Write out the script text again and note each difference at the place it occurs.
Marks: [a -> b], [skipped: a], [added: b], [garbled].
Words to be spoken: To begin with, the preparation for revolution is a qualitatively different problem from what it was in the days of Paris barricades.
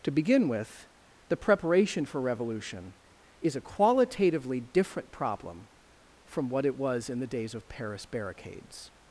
To begin with, the preparation for revolution is a qualitatively different problem from what it was in the days of Paris barricades.